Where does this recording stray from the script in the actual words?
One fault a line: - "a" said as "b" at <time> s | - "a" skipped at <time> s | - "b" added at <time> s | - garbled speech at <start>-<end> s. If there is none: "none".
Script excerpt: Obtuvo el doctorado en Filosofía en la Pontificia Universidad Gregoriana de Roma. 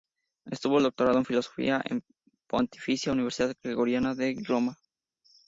none